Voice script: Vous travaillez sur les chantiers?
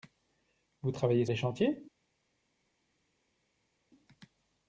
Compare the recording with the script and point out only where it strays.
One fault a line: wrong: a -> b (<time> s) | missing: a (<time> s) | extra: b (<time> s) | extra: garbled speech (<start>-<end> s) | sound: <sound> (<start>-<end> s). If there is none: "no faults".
missing: sur (1.2 s)